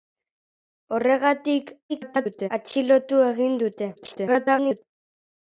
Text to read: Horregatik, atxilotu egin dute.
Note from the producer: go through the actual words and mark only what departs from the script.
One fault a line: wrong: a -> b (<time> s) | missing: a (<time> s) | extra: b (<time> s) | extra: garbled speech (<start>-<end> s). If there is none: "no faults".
extra: garbled speech (1.9-2.5 s)
extra: garbled speech (3.9-4.8 s)